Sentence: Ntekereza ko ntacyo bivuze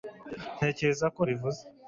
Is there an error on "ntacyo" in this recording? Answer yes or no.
yes